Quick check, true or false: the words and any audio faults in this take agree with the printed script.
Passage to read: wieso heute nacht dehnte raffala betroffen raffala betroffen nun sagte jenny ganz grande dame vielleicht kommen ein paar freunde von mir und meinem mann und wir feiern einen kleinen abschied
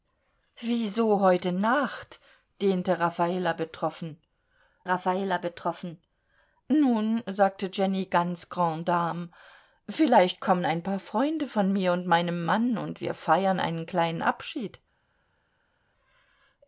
true